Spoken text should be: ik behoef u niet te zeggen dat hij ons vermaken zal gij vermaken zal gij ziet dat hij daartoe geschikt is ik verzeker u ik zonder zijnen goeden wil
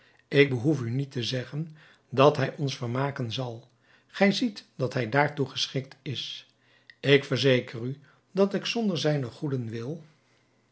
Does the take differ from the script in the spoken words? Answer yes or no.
yes